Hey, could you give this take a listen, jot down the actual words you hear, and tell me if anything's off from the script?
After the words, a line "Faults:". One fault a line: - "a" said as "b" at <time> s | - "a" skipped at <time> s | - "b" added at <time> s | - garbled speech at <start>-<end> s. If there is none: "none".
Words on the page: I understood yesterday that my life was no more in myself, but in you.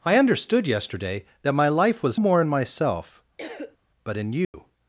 I understood yesterday that my life was more in myself, but in you.
Faults:
- "no" skipped at 2.2 s